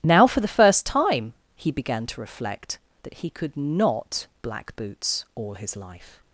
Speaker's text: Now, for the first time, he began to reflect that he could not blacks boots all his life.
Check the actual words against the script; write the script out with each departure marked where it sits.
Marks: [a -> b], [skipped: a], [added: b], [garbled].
Now, for the first time, he began to reflect that he could not [blacks -> black] boots all his life.